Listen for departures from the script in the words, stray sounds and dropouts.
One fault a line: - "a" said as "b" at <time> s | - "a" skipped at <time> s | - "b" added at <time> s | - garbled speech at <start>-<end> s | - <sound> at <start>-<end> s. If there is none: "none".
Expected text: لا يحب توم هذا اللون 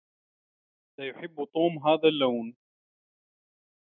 none